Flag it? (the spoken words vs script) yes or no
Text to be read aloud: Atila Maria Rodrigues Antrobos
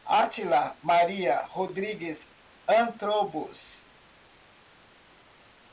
no